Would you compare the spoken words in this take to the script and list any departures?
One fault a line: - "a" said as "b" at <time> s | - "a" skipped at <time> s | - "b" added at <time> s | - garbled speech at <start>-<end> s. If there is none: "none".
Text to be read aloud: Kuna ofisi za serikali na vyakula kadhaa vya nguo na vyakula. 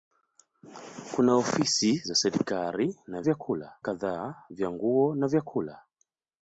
none